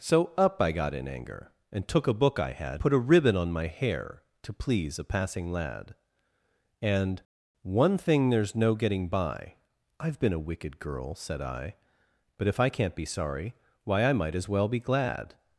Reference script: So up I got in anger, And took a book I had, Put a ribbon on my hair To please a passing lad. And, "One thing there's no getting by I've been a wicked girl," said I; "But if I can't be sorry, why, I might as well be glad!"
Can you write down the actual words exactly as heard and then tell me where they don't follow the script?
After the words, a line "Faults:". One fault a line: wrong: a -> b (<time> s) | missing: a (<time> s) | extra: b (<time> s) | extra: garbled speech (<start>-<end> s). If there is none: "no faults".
So up I got in anger, And took a book I had, Put a ribbon on my hair To please a passing lad. And, "One thing there's no getting by I've been a wicked girl," said I; "But if I can't be sorry, why, I might as well be glad!"
Faults:
no faults